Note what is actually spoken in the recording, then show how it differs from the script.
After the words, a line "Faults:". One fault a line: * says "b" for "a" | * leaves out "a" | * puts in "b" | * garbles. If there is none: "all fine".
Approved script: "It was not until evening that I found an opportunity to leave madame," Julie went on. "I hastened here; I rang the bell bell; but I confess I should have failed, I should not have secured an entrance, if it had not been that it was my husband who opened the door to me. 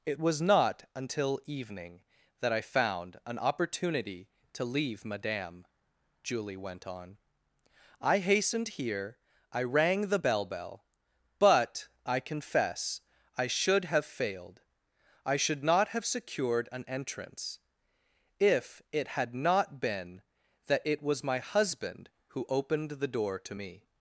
"It was not until evening that I found an opportunity to leave madame," Julie went on. "I hastened here; I rang the bell bell; but I confess I should have failed, I should not have secured an entrance, if it had not been that it was my husband who opened the door to me.
Faults:
all fine